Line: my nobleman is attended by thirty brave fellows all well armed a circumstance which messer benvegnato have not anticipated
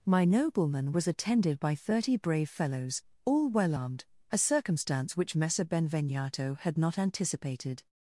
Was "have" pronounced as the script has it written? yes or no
no